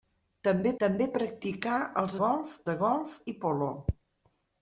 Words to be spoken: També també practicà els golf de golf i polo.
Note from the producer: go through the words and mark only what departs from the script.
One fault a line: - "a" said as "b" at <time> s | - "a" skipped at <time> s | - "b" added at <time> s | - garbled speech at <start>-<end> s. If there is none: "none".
none